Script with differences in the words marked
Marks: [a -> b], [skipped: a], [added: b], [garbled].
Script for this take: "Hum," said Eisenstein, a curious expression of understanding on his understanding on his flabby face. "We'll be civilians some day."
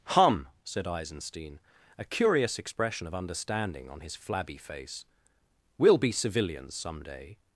"Hum," said Eisenstein, a curious expression of understanding on his [skipped: understanding on his] flabby face. "We'll be civilians some day."